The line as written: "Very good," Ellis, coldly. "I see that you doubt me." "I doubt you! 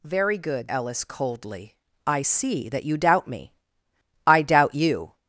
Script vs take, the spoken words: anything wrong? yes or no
no